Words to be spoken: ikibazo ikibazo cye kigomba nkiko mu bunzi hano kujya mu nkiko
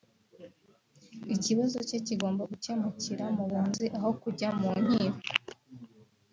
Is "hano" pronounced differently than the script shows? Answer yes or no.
yes